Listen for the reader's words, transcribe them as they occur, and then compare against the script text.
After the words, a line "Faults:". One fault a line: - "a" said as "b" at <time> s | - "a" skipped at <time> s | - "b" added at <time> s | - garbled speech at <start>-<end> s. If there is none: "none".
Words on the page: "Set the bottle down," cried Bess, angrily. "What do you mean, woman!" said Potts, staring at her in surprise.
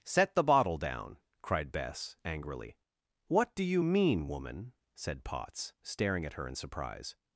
"Set the bottle down," cried Bess, angrily. "What do you mean, woman!" said Potts, staring at her in surprise.
Faults:
none